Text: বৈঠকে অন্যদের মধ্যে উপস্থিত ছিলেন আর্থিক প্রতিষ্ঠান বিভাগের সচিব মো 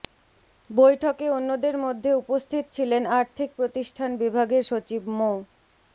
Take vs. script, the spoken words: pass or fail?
pass